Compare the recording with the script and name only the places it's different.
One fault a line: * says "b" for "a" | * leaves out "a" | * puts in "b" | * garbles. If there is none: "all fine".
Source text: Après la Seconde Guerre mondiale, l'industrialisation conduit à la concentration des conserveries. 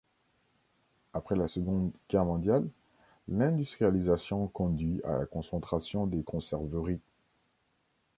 all fine